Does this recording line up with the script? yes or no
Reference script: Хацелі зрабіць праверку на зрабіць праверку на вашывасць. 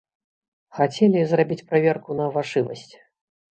no